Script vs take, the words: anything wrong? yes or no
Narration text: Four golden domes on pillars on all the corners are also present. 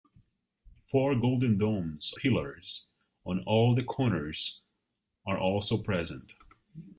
yes